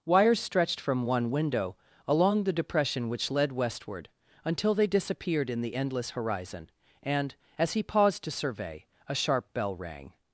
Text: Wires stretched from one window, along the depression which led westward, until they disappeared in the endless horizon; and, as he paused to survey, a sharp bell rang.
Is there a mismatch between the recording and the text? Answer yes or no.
no